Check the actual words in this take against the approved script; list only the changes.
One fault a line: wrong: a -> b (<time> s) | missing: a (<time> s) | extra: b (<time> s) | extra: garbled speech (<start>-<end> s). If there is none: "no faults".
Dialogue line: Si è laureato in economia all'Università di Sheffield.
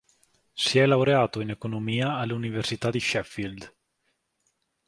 no faults